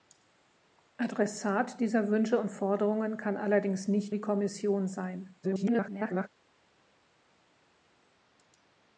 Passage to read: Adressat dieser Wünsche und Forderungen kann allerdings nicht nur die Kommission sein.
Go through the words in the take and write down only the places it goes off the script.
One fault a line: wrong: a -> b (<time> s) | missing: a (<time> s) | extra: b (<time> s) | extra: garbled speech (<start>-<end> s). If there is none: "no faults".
missing: nur (4.2 s)
extra: garbled speech (5.4-6.3 s)